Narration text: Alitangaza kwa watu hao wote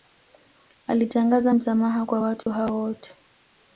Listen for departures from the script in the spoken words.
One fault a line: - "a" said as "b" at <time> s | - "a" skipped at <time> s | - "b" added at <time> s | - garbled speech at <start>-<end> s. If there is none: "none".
- "msamaha" added at 1.5 s